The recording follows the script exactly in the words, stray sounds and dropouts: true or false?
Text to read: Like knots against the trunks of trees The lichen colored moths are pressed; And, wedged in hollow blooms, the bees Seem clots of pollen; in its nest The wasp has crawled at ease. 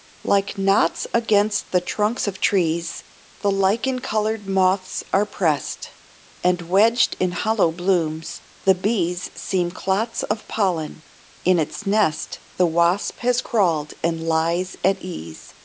false